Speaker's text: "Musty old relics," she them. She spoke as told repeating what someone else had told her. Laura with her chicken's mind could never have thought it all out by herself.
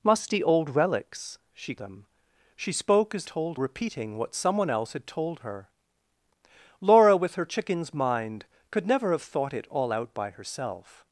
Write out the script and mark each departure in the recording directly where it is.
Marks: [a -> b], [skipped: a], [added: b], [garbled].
"Musty old relics," she them. She spoke as told repeating what someone else had told her. Laura with her chicken's mind could never have thought it all out by herself.